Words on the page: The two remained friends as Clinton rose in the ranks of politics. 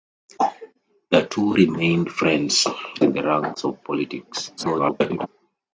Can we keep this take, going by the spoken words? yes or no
no